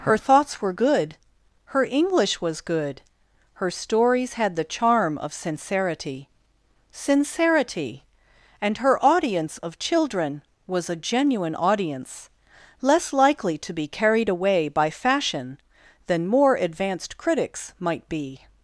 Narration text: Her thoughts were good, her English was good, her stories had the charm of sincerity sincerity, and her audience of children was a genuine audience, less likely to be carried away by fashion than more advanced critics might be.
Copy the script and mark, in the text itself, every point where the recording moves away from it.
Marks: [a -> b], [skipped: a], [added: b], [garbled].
Her thoughts were good, her English was good, her stories had the charm of sincerity sincerity, and her audience of children was a genuine audience, less likely to be carried away by fashion than more advanced critics might be.